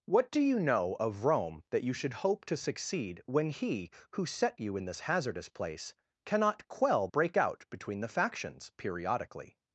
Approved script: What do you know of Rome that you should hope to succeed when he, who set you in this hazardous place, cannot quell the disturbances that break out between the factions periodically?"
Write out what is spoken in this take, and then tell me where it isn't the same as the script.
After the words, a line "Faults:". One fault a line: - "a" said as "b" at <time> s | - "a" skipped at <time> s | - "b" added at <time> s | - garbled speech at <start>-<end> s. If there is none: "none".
What do you know of Rome that you should hope to succeed when he, who set you in this hazardous place, cannot quell break out between the factions periodically?"
Faults:
- "the disturbances that" skipped at 7.1 s